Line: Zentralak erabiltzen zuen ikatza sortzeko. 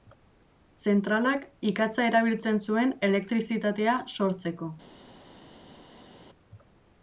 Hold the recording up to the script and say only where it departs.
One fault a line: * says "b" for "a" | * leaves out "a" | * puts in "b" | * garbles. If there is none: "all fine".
* puts in "ikatza"
* says "elektrizitatea" for "ikatza"